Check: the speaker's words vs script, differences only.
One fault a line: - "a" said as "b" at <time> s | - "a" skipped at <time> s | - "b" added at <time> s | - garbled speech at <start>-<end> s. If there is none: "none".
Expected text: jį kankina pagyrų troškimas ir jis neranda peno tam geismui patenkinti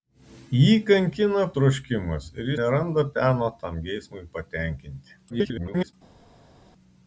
- "pagyrų" skipped at 1.4 s
- "jis" skipped at 2.5 s
- garbled speech at 5.3-5.9 s